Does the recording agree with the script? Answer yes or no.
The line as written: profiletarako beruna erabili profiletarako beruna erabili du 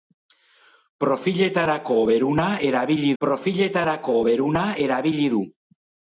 yes